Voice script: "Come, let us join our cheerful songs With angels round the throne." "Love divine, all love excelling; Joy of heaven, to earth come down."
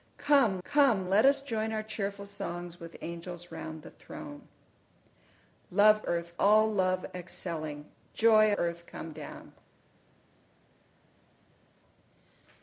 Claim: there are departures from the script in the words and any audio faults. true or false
true